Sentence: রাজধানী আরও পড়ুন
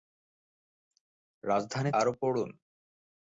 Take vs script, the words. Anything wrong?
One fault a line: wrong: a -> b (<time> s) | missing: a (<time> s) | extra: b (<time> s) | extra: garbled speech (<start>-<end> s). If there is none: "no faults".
no faults